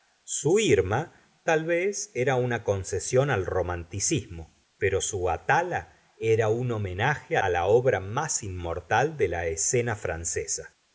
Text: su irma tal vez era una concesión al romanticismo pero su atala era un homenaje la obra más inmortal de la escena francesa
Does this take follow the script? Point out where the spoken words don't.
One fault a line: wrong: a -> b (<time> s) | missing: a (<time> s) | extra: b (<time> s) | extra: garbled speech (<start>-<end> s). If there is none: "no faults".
no faults